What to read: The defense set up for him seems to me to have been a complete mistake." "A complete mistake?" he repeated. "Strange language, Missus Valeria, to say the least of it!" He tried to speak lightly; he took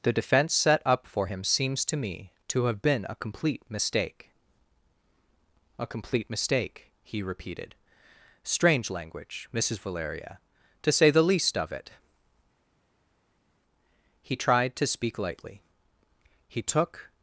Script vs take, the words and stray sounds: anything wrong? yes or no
no